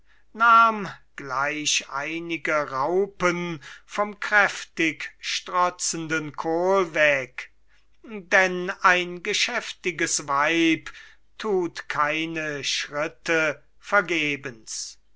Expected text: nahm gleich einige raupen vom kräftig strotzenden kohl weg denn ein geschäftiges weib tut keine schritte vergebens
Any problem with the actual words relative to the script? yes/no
no